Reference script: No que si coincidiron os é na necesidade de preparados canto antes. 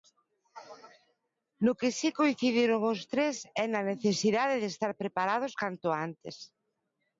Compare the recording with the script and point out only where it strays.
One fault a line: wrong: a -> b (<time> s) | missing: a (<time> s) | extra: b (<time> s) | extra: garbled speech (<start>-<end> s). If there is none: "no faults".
extra: tres (3.1 s)
extra: estar (4.7 s)